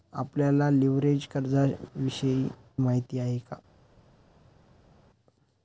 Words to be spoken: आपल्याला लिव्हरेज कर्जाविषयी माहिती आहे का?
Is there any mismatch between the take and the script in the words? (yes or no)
no